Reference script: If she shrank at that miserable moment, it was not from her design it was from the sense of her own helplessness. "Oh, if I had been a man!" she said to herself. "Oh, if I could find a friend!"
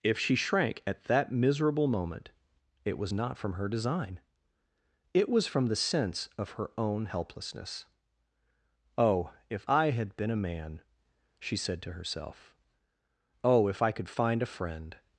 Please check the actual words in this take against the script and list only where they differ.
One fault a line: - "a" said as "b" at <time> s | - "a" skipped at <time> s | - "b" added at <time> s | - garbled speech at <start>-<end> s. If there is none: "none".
none